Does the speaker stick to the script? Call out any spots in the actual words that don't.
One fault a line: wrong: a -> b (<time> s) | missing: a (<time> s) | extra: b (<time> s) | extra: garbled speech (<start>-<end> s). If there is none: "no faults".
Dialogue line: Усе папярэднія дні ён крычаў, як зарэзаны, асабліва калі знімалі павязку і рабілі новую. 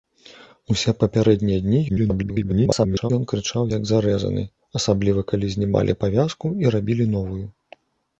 extra: garbled speech (1.9-3.1 s)